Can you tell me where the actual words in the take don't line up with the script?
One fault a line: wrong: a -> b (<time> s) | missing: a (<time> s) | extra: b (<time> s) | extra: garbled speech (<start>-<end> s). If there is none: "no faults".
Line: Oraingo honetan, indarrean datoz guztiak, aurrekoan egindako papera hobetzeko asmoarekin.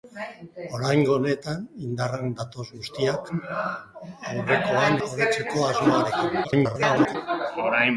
missing: egindako papera (5.0 s)
extra: garbled speech (6.4-7.2 s)